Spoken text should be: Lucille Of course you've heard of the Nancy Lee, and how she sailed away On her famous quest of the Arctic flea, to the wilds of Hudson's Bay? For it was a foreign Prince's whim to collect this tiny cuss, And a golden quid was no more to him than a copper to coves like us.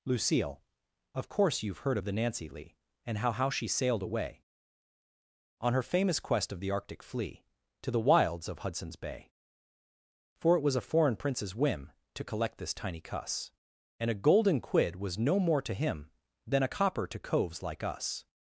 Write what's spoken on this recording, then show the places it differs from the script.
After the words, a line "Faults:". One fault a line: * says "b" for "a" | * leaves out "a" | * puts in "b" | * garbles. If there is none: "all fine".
Lucille Of course you've heard of the Nancy Lee, and how how she sailed away On her famous quest of the Arctic flea, to the wilds of Hudson's Bay? For it was a foreign Prince's whim to collect this tiny cuss, And a golden quid was no more to him than a copper to coves like us.
Faults:
* puts in "how"